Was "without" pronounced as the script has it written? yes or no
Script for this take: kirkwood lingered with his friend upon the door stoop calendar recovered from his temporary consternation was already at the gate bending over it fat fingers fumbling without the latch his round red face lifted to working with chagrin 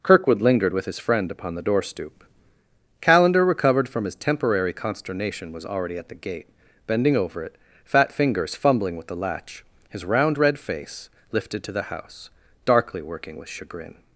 no